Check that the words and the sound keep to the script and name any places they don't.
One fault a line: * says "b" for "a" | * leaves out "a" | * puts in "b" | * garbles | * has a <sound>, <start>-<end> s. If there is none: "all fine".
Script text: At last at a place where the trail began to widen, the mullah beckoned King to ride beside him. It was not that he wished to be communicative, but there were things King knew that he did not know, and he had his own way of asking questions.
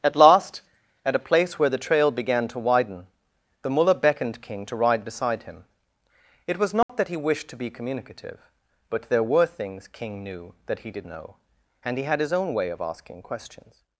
* has a dropout, 6.8-6.9 s
* leaves out "not"